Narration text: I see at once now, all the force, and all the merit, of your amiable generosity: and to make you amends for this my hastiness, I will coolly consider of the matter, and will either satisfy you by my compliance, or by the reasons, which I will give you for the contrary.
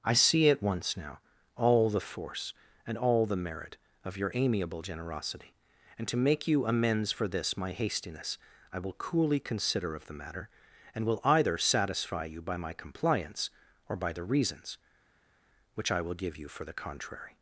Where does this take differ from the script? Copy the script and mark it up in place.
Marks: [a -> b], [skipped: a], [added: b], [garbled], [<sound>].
I see at once now, all the force, and all the merit, of your amiable generosity: and to make you amends for this my hastiness, I will coolly consider of the matter, and will either satisfy you by my compliance, or by the reasons, which I will give you for the contrary.